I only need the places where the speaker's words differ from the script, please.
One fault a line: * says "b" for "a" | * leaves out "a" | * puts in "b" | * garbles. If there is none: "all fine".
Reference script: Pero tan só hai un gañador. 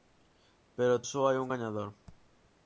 * leaves out "tan"